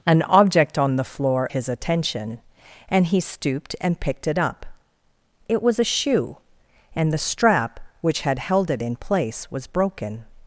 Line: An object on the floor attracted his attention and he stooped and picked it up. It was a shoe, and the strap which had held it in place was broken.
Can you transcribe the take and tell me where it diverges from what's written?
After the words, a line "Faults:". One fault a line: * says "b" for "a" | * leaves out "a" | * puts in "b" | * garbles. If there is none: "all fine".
An object on the floor his attention and he stooped and picked it up. It was a shoe, and the strap which had held it in place was broken.
Faults:
* leaves out "attracted"